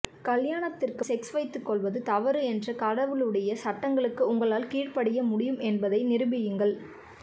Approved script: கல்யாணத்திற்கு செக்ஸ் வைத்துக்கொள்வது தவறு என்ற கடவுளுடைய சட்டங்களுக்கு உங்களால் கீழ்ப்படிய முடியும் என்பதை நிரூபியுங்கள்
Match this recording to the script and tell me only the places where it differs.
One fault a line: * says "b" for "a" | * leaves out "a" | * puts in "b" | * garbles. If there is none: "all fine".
all fine